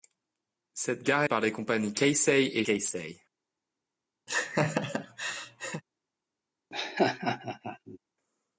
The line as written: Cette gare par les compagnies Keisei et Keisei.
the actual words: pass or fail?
pass